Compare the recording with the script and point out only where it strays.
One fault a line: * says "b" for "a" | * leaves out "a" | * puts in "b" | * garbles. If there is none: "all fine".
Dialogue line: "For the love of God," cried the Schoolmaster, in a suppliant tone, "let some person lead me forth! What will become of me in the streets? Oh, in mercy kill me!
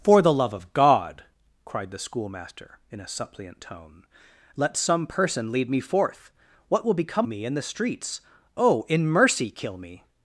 * leaves out "of"